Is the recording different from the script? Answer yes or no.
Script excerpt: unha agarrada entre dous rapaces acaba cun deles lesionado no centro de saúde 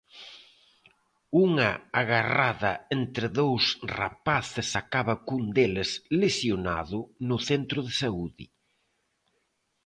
no